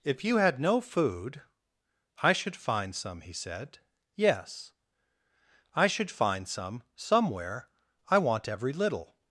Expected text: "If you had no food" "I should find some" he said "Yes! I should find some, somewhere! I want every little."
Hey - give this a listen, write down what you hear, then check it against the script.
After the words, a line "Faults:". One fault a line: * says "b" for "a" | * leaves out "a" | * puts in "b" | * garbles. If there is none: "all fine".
"If you had no food" "I should find some" he said "Yes! I should find some, somewhere! I want every little."
Faults:
all fine